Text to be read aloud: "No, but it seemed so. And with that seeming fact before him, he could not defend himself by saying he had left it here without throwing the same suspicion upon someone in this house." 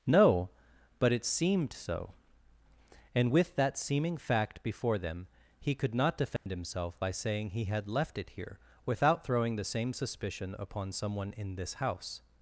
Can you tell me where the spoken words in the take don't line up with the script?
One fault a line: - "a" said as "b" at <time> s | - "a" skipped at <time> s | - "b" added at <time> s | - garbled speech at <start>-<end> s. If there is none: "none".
- "him" said as "them" at 5.0 s